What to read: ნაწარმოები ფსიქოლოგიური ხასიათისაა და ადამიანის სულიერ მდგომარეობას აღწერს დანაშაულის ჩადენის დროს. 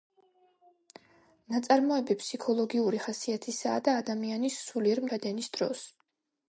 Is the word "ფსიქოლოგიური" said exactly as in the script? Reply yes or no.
yes